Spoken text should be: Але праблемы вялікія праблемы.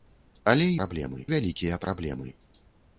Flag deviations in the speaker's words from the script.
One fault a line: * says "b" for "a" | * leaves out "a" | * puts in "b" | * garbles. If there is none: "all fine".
all fine